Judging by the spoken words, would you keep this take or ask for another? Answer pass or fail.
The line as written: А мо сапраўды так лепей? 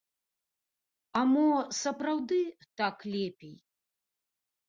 pass